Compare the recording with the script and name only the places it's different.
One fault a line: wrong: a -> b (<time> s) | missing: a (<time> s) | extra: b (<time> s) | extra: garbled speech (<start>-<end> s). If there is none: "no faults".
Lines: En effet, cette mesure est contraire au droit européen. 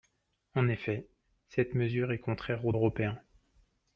missing: droit (2.7 s)